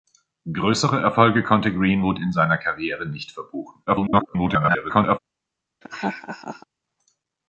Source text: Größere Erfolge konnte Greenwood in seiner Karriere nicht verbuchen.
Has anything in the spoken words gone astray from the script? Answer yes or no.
yes